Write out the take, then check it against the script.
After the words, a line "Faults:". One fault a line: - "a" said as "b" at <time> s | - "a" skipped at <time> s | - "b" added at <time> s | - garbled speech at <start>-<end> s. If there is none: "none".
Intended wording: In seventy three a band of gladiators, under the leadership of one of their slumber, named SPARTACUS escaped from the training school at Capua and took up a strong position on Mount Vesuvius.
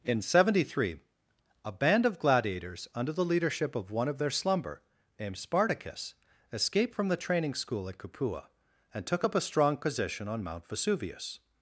In seventy three a band of gladiators, under the leadership of one of their slumber, named SPARTACUS escaped from the training school at Capua and took up a strong position on Mount Vesuvius.
Faults:
none